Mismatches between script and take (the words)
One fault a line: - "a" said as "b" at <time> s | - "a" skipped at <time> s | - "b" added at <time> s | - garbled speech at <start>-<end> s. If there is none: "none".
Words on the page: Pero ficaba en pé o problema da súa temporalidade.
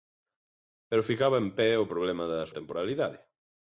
- "súa" skipped at 2.5 s